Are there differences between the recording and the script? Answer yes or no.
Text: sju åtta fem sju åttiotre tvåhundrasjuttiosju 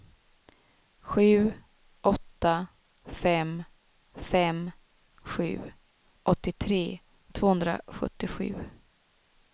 yes